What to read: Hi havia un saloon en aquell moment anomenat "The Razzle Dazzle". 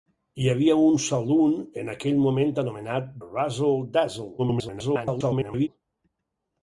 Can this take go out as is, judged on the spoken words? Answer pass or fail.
fail